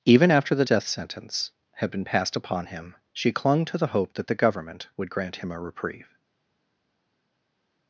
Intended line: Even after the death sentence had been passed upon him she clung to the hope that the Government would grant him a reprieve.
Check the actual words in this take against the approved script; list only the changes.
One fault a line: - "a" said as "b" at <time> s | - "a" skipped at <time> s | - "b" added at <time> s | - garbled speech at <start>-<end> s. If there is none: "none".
none